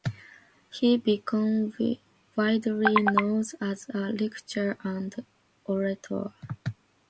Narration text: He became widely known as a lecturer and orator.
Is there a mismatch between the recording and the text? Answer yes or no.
no